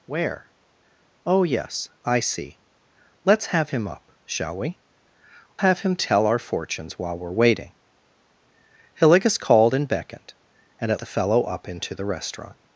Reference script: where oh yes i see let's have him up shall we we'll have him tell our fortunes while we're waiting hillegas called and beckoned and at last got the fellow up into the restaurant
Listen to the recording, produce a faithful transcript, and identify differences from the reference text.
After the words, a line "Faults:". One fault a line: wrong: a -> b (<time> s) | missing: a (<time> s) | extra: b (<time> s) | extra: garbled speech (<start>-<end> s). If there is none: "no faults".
where oh yes i see let's have him up shall we have him tell our fortunes while we're waiting hillegas called and beckoned and at the fellow up into the restaurant
Faults:
missing: we'll (4.8 s)
missing: last got (11.0 s)